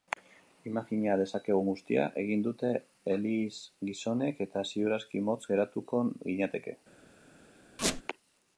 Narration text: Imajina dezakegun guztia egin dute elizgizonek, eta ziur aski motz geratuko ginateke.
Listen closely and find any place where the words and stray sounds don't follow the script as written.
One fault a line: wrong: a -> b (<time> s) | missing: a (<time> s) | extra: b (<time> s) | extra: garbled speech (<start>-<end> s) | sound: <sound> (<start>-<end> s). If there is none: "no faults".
sound: squeak (7.8-8.0 s)